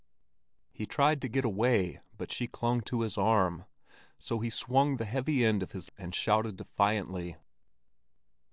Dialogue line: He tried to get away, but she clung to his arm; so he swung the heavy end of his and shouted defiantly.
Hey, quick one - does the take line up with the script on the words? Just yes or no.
yes